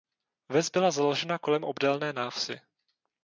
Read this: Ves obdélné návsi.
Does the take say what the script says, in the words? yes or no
no